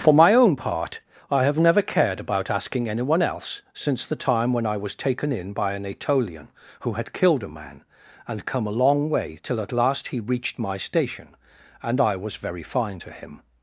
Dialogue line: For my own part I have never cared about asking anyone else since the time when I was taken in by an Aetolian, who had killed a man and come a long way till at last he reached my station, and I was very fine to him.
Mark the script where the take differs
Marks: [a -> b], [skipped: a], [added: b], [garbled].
For my own part I have never cared about asking anyone else since the time when I was taken in by an Aetolian, who had killed a man and come a long way till at last he reached my station, and I was very fine to him.